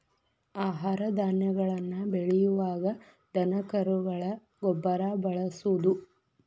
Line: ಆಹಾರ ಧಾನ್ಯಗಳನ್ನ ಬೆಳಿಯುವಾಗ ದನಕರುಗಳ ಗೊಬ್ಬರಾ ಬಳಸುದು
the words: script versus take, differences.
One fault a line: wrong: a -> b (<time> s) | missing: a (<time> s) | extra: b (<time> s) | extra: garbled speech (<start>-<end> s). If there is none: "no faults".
no faults